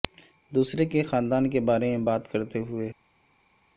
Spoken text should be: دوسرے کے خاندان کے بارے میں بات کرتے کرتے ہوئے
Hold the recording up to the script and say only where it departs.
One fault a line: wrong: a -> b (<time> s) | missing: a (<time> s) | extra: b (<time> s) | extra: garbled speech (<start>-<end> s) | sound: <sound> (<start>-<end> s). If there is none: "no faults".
missing: کرتے (2.6 s)